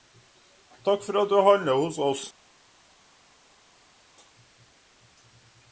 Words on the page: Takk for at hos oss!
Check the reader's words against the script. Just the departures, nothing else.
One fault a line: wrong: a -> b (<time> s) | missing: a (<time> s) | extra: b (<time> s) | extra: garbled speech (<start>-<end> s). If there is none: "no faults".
extra: du handler (1.3 s)